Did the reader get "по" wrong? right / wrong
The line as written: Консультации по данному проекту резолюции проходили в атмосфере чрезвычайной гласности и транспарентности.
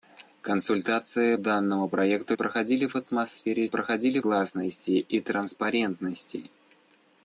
wrong